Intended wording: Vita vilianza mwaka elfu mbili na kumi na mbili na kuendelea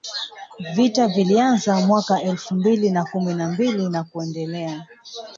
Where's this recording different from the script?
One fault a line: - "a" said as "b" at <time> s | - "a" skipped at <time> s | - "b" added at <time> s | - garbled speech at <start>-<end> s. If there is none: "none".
none